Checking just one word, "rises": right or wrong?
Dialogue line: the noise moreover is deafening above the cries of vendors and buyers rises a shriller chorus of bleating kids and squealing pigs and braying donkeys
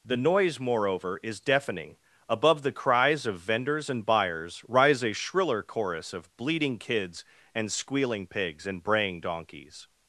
wrong